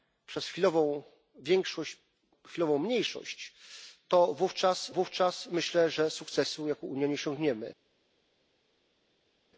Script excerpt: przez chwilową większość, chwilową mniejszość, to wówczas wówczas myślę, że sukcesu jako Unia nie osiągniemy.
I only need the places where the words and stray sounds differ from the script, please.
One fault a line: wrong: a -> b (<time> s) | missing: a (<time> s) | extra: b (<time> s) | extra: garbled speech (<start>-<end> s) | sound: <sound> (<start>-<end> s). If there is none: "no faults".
no faults